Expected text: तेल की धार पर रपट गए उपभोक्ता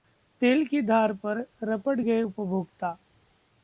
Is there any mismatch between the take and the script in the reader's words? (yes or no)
no